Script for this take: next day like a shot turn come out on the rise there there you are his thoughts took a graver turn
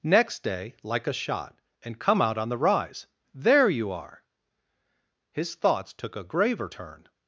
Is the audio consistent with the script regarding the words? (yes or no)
no